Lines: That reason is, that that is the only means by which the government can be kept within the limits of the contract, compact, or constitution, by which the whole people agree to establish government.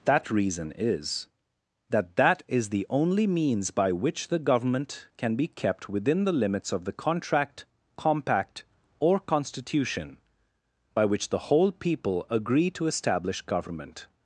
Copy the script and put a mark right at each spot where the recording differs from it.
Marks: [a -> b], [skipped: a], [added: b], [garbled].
That reason is, that that is the only means by which the government can be kept within the limits of the contract, compact, or constitution, by which the whole people agree to establish government.